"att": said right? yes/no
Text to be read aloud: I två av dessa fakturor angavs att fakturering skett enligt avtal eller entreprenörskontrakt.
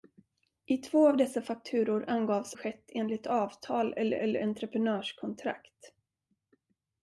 no